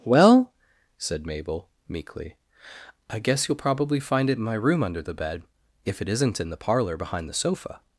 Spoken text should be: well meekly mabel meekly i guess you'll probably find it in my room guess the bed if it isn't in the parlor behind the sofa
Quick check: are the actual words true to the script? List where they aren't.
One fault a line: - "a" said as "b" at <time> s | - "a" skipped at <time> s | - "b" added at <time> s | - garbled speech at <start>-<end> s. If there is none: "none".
- "meekly" said as "said" at 1.0 s
- "guess" said as "under" at 4.8 s